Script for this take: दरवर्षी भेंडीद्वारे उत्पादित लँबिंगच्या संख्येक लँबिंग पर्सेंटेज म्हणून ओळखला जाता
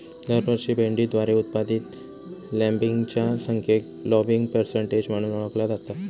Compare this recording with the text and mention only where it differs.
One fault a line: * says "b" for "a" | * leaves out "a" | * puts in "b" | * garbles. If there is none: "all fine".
all fine